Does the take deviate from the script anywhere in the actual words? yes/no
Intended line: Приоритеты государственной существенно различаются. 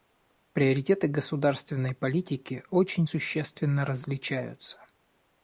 yes